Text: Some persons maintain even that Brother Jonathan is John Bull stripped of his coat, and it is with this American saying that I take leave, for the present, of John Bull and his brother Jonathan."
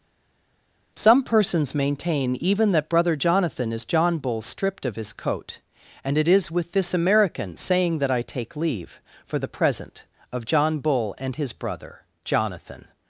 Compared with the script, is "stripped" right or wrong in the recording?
right